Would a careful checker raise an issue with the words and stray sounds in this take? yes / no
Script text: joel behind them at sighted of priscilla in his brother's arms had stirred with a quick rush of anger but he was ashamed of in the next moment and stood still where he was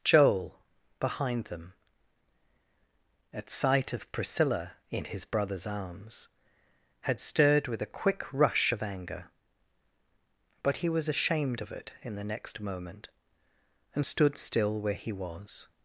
yes